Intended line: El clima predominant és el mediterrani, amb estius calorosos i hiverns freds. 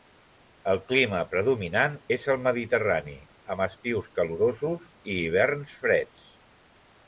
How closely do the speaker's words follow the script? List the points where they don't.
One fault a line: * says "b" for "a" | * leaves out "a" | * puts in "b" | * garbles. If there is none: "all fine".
all fine